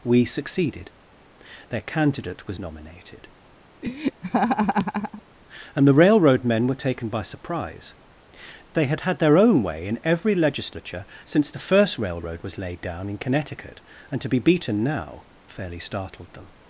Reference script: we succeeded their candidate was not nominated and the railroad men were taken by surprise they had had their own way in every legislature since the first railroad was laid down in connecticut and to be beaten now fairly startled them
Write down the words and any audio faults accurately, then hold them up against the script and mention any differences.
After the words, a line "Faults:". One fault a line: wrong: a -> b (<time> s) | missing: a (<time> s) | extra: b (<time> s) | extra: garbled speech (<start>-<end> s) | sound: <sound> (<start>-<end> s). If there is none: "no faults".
we succeeded their candidate was nominated and the railroad men were taken by surprise they had had their own way in every legislature since the first railroad was laid down in connecticut and to be beaten now fairly startled them
Faults:
missing: not (2.6 s)
sound: laugh (3.8-5.2 s)